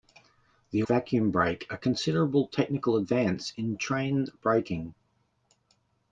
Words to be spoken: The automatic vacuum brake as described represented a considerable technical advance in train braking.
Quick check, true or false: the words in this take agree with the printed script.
false